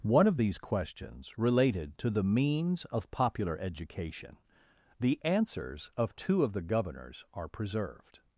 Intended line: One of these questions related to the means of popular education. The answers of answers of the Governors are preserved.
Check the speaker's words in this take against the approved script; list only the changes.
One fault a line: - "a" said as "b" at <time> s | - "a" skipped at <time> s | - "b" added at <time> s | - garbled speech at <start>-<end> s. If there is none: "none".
- "answers" said as "two" at 6.1 s